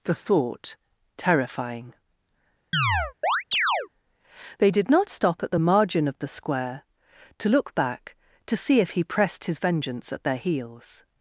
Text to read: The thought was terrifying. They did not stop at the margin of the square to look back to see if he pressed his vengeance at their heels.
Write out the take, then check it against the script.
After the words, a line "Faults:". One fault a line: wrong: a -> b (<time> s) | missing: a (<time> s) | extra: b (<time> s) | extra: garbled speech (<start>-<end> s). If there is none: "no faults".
The thought terrifying. They did not stop at the margin of the square to look back to see if he pressed his vengeance at their heels.
Faults:
missing: was (0.8 s)